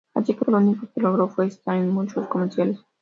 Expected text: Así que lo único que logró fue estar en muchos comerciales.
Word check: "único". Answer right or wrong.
right